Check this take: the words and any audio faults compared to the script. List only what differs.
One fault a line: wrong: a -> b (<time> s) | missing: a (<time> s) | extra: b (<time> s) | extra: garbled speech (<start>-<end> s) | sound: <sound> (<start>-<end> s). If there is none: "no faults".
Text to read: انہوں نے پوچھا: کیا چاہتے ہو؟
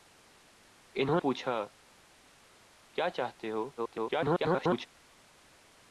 missing: نے (1.2 s)
extra: garbled speech (3.8-4.9 s)